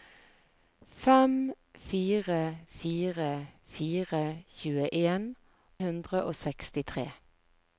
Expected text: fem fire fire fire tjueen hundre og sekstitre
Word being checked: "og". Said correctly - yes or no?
yes